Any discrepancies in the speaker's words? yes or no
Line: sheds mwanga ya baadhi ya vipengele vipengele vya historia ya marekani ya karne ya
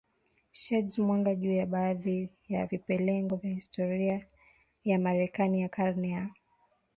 yes